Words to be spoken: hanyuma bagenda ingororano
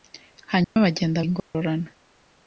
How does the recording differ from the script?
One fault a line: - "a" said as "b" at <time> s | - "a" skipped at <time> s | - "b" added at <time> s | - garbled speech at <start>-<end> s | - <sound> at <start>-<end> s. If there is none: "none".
- dropout at 0.6-0.8 s
- dropout at 1.4-1.5 s